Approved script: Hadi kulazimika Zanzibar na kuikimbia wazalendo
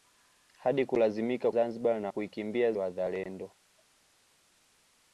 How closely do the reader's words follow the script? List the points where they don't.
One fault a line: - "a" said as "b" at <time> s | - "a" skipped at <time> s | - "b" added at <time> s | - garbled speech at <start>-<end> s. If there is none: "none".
none